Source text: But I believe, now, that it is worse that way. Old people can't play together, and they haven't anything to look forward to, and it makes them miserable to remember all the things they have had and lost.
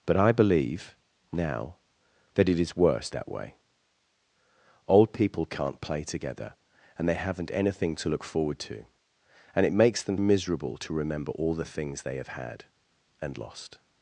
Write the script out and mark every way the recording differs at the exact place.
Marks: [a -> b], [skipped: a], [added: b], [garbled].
But I believe, now, that it is worse that way. Old people can't play together, and they haven't anything to look forward to, and it makes them miserable to remember all the things they have had and lost.